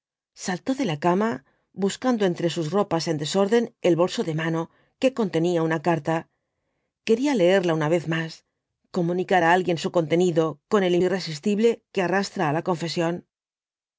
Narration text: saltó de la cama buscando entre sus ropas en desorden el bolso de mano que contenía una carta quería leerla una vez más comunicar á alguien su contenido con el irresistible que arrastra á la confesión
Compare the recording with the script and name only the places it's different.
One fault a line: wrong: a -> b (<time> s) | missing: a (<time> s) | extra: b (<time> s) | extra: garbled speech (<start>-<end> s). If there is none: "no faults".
no faults